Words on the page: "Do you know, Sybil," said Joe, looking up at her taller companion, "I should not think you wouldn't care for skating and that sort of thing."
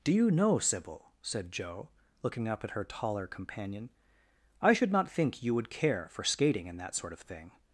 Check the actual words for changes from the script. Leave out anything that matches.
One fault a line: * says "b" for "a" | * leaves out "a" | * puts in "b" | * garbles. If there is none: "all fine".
* says "would" for "wouldn't"